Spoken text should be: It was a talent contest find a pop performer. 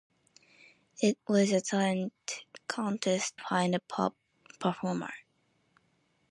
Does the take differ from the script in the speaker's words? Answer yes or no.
no